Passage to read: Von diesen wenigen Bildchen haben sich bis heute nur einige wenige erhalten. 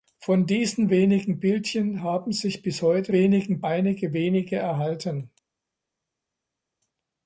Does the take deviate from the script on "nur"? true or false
true